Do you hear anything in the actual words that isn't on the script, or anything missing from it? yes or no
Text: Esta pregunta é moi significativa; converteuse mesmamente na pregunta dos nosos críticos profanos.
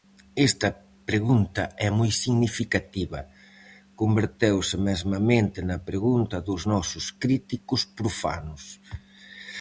no